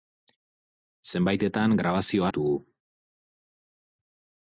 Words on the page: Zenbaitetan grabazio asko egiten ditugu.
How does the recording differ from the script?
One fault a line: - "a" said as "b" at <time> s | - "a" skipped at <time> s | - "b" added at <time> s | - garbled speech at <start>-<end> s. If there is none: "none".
- "asko egiten" skipped at 2.3 s